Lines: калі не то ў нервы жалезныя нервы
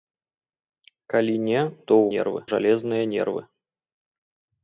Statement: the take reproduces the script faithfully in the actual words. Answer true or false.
true